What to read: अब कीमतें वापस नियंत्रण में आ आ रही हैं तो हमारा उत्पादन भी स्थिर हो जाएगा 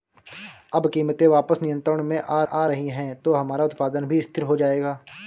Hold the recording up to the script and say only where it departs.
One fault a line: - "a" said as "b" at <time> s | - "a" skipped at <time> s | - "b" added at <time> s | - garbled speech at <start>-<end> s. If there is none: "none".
none